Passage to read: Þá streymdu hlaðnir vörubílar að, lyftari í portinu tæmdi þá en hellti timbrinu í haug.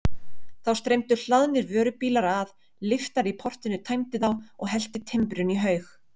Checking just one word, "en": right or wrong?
wrong